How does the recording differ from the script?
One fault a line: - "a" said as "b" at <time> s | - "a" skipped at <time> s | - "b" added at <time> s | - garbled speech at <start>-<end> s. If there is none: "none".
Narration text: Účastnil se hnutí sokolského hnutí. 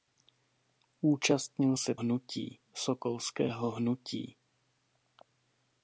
none